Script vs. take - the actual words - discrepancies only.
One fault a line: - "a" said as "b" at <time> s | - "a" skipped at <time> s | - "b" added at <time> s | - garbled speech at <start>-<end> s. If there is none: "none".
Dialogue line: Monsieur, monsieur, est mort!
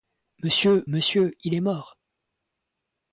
- "il" added at 1.4 s